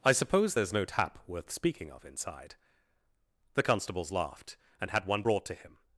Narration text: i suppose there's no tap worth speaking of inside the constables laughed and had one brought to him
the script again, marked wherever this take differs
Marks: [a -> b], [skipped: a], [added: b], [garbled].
i suppose there's no tap worth speaking of inside the constables laughed and had one brought to him